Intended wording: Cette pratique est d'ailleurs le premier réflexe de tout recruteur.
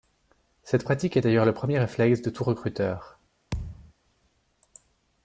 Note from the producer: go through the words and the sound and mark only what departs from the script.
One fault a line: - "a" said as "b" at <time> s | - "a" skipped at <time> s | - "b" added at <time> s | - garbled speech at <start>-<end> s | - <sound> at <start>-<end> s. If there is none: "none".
- thud at 3.5-3.9 s